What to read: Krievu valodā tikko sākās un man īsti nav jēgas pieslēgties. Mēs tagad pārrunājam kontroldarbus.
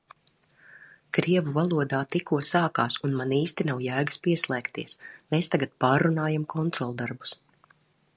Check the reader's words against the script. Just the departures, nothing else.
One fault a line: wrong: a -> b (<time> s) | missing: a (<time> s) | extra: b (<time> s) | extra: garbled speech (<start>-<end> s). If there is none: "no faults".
no faults